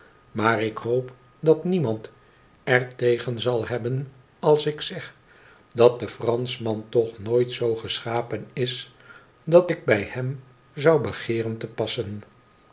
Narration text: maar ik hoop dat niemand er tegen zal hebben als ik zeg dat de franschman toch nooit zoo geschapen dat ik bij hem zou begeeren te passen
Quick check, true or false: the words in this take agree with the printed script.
false